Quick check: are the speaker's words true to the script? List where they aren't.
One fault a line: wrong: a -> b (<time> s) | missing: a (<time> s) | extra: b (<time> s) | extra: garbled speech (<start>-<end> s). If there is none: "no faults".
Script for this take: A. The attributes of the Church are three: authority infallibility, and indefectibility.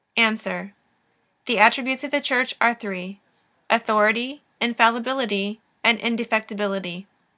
no faults